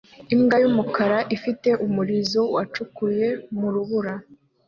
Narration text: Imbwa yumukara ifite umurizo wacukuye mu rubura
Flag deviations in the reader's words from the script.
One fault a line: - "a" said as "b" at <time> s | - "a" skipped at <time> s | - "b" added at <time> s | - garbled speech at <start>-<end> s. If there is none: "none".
none